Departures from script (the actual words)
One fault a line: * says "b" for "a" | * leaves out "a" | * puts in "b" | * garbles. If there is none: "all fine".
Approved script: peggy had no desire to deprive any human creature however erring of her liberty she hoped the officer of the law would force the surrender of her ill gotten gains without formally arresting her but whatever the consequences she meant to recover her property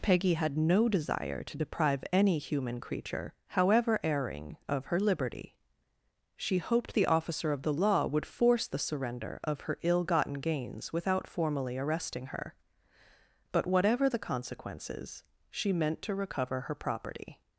all fine